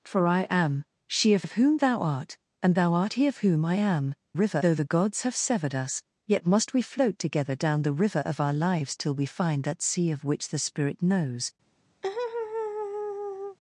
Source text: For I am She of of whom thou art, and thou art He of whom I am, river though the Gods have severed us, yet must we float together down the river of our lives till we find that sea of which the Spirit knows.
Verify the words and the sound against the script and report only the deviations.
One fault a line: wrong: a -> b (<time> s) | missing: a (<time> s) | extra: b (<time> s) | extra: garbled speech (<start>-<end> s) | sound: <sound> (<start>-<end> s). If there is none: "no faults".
sound: laugh (12.0-13.6 s)